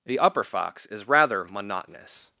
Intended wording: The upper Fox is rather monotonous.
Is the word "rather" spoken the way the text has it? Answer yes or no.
yes